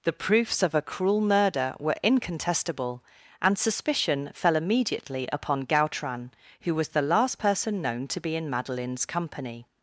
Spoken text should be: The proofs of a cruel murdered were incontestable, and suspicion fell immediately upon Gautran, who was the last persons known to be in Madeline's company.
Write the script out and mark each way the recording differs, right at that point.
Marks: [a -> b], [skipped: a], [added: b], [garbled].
The proofs of a cruel [murdered -> murder] were incontestable, and suspicion fell immediately upon Gautran, who was the last [persons -> person] known to be in Madeline's company.